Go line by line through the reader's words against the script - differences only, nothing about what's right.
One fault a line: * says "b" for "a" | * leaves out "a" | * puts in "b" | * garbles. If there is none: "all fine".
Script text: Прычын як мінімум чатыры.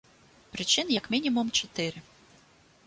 all fine